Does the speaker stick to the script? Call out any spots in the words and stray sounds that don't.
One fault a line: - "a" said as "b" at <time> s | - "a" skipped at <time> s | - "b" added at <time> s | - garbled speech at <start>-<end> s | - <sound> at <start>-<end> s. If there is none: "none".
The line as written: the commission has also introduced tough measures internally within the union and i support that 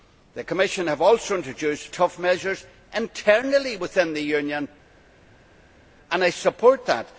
none